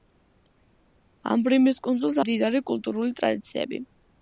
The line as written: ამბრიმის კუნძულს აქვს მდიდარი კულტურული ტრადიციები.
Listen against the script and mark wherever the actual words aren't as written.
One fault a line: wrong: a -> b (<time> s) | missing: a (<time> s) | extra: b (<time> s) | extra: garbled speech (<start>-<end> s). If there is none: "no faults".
missing: აქვს (2.2 s)